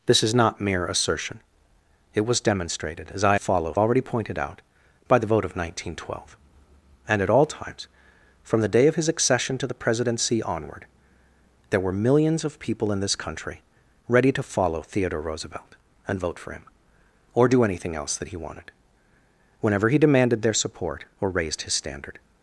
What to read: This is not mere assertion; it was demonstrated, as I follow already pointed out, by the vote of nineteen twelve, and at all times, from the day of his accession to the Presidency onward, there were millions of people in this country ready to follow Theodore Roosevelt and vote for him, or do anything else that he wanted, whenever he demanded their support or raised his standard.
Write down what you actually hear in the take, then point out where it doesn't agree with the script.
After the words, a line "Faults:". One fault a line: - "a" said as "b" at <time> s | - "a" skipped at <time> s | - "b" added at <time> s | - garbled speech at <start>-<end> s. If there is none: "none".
This is not mere assertion; it was demonstrated, as I follow already pointed out, by the vote of nineteen twelve, and at all times, from the day of his accession to the Presidency onward, there were millions of people in this country ready to follow Theodore Roosevelt and vote for him, or do anything else that he wanted, whenever he demanded their support or raised his standard.
Faults:
none